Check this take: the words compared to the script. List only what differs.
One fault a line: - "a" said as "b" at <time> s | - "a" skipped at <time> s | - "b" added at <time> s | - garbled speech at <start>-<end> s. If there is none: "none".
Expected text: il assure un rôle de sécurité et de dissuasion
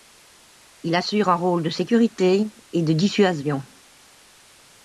none